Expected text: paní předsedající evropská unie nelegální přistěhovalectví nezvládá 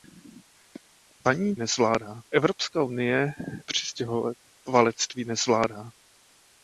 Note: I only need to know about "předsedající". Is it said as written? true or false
false